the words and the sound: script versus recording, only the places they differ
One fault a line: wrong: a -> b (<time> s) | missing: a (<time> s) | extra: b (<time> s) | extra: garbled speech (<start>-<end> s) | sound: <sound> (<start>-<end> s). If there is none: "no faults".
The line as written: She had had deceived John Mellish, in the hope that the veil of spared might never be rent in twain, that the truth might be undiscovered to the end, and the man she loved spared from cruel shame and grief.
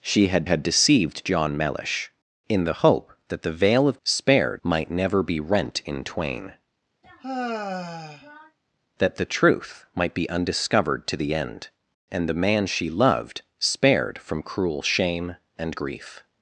sound: sigh (7.0-8.6 s)